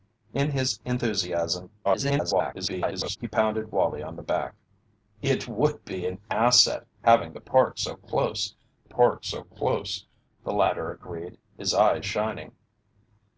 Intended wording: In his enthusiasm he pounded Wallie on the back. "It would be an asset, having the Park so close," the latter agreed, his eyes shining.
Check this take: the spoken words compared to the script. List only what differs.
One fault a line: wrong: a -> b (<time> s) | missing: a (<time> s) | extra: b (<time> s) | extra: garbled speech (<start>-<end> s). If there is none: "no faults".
extra: garbled speech (1.8-3.2 s)
extra: Park so close (8.8 s)